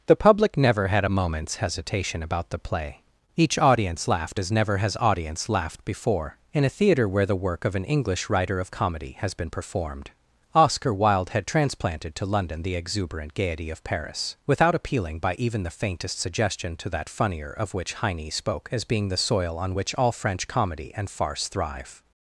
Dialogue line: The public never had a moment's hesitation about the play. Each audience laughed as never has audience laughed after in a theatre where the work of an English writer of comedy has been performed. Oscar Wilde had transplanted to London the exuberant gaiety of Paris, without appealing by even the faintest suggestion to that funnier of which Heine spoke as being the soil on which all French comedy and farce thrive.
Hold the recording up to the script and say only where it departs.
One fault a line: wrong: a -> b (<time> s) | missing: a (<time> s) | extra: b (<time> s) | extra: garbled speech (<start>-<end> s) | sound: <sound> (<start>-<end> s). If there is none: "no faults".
wrong: after -> before (5.8 s)